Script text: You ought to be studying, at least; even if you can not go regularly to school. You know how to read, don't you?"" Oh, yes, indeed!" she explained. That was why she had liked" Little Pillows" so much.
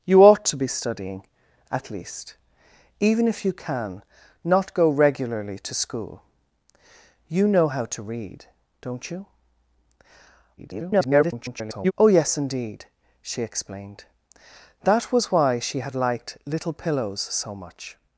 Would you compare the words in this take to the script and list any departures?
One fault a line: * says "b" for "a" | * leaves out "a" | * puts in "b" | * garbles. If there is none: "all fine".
* garbles